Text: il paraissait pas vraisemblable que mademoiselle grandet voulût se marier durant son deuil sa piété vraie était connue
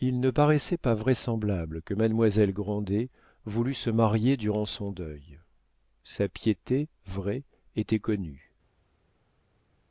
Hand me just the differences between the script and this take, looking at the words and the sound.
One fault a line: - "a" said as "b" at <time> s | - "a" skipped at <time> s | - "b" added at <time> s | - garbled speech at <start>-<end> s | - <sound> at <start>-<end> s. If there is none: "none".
- "ne" added at 0.2 s